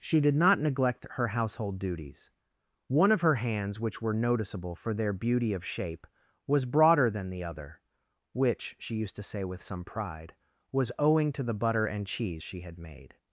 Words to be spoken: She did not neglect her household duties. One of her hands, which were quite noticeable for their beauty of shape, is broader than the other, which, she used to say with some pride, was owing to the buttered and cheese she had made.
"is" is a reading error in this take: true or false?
true